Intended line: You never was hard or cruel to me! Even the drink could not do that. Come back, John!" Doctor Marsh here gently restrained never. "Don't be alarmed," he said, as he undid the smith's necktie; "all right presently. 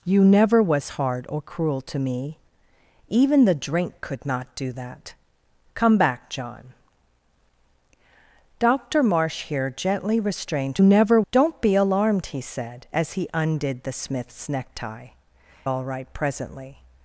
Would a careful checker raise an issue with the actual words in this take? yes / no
no